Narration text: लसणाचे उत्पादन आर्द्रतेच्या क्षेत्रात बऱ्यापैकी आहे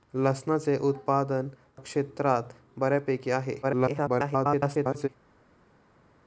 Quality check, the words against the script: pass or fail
fail